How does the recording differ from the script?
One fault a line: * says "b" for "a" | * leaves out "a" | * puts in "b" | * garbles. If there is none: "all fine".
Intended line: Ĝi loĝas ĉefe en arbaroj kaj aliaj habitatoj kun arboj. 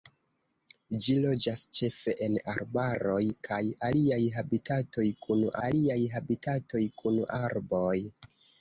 * puts in "aliaj habitatoj kun"